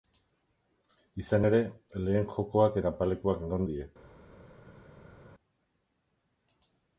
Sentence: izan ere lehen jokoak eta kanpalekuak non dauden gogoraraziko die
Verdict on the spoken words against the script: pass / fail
fail